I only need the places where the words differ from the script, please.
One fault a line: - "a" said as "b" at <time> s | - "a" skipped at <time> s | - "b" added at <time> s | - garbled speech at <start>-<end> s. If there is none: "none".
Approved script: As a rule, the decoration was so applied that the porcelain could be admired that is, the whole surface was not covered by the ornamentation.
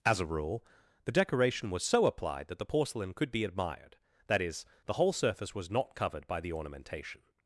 none